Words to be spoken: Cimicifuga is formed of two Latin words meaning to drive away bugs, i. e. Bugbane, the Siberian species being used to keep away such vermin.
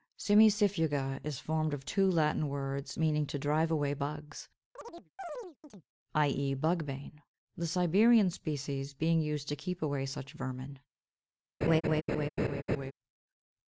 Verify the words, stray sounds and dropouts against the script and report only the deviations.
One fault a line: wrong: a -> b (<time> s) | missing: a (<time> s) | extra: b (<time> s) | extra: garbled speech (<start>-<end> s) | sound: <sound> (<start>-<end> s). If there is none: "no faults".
sound: chirp (4.8-5.9 s)
sound: laugh (11.6-12.9 s)